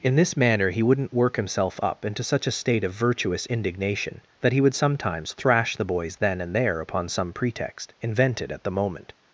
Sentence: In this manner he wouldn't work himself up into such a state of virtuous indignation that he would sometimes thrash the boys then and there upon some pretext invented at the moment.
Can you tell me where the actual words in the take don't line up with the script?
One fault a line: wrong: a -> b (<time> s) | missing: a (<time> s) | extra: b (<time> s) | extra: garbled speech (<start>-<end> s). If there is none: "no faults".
no faults